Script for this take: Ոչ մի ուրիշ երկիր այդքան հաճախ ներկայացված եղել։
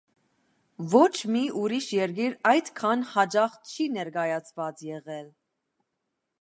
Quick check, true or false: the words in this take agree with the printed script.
false